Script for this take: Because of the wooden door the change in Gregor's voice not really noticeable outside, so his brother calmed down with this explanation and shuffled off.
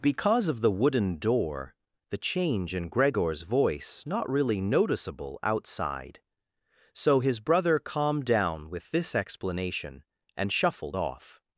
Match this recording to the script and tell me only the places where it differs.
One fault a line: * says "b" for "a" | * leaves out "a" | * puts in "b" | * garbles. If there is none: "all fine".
all fine